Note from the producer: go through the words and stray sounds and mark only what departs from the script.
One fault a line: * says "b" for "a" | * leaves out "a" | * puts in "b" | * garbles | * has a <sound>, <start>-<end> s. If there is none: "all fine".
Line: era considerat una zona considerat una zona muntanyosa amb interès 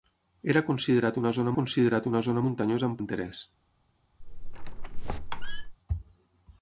* has a squeak, 4.2-5.8 s